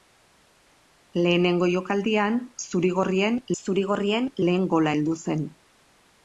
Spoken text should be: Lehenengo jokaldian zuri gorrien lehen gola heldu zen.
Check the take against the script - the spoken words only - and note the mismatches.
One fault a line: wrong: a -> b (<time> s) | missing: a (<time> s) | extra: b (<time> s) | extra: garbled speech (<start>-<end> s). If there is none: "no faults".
extra: zuri gorrien (3.6 s)